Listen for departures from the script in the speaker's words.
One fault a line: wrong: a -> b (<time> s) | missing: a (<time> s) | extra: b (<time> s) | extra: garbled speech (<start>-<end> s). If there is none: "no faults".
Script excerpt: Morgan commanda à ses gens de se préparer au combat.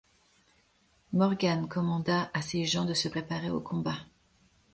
no faults